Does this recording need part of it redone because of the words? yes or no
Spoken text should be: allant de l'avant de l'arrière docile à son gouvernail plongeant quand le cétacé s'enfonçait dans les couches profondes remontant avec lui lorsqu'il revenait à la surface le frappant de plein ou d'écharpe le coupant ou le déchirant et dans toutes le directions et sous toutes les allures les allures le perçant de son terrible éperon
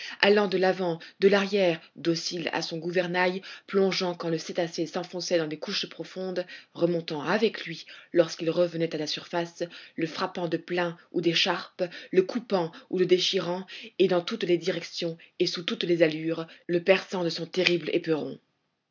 yes